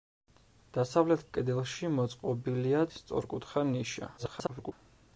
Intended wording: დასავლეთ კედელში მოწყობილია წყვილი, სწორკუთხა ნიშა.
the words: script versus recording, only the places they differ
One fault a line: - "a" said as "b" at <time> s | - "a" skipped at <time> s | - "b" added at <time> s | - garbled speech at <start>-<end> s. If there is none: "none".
- "წყვილი" skipped at 2.8 s
- garbled speech at 4.2-4.7 s